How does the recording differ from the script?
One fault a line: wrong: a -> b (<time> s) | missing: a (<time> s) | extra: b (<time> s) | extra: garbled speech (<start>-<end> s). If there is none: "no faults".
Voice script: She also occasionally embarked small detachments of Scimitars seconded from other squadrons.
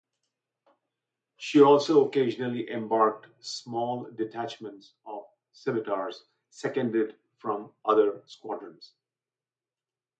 no faults